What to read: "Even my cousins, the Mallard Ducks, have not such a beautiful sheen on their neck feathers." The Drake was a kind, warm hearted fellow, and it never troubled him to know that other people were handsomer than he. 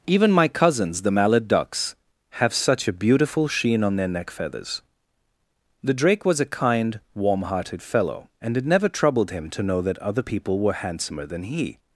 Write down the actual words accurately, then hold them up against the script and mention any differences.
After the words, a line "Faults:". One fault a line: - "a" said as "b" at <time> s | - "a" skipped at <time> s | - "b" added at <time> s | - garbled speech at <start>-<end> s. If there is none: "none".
"Even my cousins, the Mallard Ducks, have such a beautiful sheen on their neck feathers." The Drake was a kind, warm hearted fellow, and it never troubled him to know that other people were handsomer than he.
Faults:
- "not" skipped at 2.5 s